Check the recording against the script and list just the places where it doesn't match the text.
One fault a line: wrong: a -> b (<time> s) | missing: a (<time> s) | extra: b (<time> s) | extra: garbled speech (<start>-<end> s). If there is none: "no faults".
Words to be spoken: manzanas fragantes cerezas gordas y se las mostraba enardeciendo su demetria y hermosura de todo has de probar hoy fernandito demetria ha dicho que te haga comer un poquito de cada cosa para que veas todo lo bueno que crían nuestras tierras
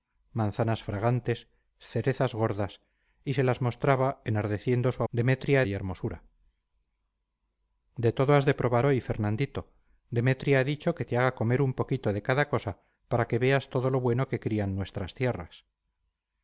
no faults